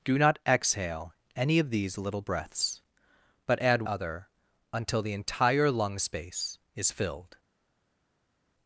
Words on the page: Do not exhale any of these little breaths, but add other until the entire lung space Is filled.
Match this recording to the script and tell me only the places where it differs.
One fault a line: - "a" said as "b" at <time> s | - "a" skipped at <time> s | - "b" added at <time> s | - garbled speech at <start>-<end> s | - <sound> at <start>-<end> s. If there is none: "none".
none